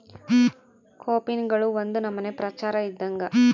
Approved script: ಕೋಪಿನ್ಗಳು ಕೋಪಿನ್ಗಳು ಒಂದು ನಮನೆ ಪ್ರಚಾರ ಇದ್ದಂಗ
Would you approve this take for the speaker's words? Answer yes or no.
no